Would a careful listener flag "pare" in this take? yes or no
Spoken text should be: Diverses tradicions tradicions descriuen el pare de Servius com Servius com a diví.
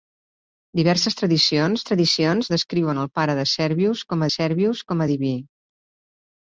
no